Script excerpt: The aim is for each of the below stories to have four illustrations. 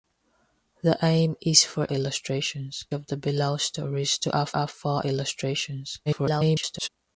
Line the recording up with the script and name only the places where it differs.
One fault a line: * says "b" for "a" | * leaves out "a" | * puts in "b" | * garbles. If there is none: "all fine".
* says "illustrations" for "each"
* puts in "have"
* garbles